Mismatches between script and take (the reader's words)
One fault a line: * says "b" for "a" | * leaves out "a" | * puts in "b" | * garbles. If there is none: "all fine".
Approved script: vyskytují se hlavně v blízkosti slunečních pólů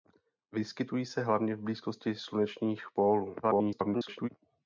* garbles